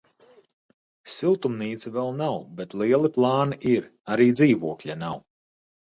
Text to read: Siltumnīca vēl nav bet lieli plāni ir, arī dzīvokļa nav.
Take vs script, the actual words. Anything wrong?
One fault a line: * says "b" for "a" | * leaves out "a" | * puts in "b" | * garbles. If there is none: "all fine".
all fine